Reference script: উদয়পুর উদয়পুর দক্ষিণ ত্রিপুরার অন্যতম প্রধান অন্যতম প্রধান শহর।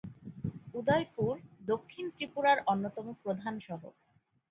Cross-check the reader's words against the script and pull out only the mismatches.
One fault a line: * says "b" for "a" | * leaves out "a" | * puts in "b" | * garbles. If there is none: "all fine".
* leaves out "উদয়পুর"
* leaves out "অন্যতম প্রধান"